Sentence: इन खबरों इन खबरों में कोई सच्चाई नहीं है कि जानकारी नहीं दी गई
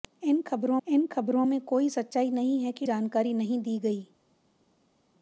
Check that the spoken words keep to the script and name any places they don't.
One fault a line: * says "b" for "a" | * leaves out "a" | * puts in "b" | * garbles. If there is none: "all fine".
all fine